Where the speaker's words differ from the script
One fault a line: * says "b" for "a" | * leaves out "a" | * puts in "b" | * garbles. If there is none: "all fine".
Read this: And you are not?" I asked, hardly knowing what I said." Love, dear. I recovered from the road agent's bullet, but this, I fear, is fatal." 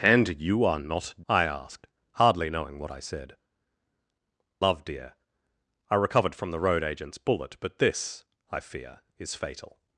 all fine